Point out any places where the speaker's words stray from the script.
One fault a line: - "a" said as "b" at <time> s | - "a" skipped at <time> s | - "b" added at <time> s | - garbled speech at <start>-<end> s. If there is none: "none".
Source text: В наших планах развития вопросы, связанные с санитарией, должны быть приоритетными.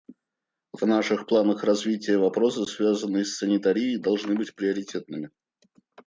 none